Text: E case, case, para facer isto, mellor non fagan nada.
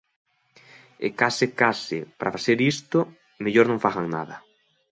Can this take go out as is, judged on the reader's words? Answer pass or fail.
pass